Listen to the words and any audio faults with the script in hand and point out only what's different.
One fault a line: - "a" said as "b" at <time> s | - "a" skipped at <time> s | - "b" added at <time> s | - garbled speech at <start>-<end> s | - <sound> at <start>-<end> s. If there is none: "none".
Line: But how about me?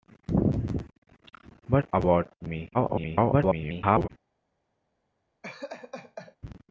- "how" skipped at 1.9 s
- garbled speech at 2.7-4.1 s
- laugh at 5.4-6.4 s